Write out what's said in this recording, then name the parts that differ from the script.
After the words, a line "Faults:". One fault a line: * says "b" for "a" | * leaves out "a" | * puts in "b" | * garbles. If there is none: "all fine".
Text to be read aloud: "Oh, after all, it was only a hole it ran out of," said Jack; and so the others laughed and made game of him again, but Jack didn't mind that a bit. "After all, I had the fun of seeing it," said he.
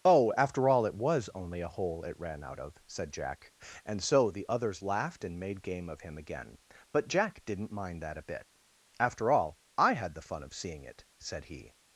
"Oh, after all, it was only a hole it ran out of," said Jack; and so the others laughed and made game of him again, but Jack didn't mind that a bit. "After all, I had the fun of seeing it," said he.
Faults:
all fine